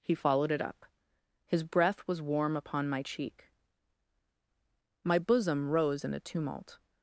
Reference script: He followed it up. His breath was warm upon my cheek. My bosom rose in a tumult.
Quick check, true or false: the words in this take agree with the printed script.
true